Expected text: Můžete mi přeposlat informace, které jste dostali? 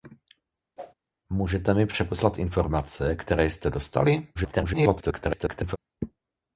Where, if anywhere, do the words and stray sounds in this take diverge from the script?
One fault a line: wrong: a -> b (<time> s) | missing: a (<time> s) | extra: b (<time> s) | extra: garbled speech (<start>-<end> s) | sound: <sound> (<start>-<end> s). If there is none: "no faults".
sound: whoosh (0.8-0.9 s)
extra: garbled speech (4.3-5.8 s)